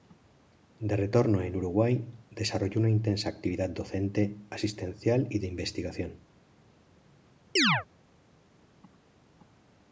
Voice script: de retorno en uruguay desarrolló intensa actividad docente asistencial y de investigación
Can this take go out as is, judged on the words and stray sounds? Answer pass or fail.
fail